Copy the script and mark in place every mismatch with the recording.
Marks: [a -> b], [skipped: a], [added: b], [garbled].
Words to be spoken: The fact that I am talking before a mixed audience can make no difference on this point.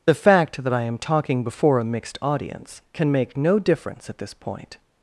The fact that I am talking before a mixed audience can make no difference [on -> at] this point.